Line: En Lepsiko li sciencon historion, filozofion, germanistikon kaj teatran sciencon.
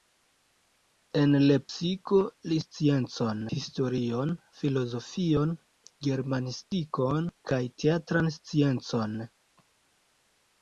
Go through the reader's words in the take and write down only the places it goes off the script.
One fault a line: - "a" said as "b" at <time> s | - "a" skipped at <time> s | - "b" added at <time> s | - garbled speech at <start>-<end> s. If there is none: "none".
none